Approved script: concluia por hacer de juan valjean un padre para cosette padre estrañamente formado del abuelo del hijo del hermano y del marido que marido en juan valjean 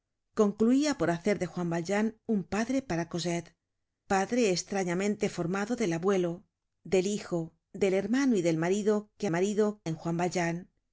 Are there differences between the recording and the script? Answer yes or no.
no